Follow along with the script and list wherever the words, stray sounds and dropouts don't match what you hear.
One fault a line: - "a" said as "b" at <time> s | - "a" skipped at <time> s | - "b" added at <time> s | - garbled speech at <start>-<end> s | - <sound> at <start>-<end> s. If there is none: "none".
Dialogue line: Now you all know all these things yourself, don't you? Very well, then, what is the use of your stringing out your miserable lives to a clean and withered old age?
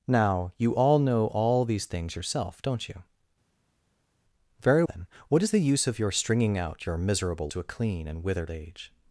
- "well" skipped at 4.8 s
- "lives" skipped at 7.5 s
- "old" skipped at 8.5 s